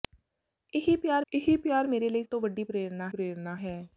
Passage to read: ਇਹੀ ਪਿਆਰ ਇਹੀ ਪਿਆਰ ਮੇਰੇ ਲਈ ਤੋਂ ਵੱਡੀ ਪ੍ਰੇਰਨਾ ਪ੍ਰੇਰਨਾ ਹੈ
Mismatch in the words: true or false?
false